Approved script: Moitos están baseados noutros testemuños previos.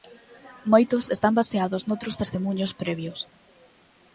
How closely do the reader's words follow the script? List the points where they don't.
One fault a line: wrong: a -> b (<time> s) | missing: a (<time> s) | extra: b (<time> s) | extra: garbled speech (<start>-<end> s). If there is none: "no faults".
no faults